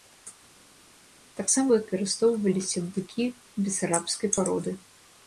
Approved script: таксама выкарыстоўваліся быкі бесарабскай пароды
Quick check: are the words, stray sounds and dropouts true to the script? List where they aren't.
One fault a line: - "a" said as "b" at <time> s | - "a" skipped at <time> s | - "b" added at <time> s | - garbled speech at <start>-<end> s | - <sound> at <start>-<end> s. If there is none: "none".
none